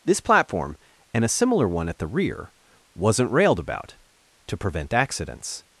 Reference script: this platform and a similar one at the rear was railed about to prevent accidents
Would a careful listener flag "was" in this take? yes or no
yes